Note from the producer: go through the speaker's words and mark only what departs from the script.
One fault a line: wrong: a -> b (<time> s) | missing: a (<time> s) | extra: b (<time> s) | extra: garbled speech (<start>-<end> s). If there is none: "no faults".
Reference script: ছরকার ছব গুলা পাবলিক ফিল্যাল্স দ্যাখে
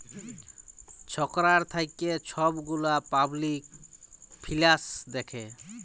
extra: থ্যাইকে (1.6 s)